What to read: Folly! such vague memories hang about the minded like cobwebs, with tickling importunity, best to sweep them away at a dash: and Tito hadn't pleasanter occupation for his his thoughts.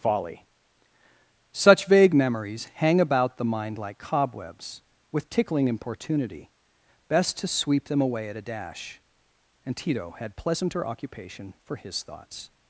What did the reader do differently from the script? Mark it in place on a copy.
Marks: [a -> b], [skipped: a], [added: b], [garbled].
Folly! such vague memories hang about the [minded -> mind] like cobwebs, with tickling importunity, best to sweep them away at a dash: and Tito [hadn't -> had] pleasanter occupation for his [skipped: his] thoughts.